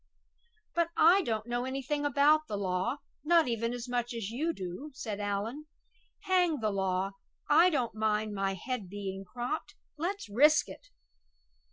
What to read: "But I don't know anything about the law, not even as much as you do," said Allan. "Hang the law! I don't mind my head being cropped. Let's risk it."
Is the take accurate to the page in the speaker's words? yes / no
yes